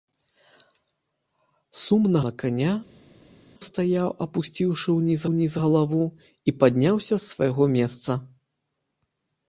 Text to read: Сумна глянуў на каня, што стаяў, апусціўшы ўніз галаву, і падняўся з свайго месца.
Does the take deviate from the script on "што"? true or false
true